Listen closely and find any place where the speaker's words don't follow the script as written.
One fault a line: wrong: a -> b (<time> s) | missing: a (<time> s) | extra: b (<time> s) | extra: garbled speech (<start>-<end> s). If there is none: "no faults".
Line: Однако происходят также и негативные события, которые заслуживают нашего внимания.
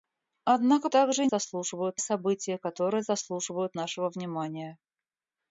missing: происходят (0.9 s)
wrong: негативные -> заслуживают (1.3 s)